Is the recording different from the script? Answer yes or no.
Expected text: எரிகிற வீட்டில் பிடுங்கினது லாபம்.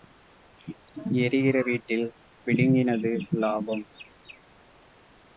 no